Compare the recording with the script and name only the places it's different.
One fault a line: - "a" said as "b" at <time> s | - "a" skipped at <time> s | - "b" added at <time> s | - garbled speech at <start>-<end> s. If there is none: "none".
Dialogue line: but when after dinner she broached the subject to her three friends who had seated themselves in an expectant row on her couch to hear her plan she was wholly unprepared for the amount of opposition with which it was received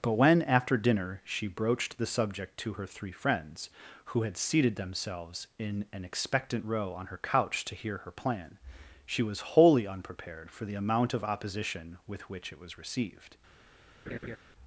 none